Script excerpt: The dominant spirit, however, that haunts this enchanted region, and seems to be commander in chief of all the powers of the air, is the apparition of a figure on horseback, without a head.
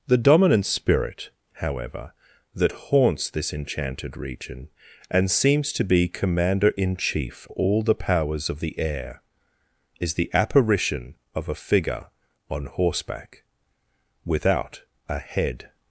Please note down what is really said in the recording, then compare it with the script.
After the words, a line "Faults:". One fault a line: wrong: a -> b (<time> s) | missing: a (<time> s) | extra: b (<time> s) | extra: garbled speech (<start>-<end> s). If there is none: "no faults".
The dominant spirit, however, that haunts this enchanted region, and seems to be commander in chief all the powers of the air, is the apparition of a figure on horseback, without a head.
Faults:
missing: of (7.5 s)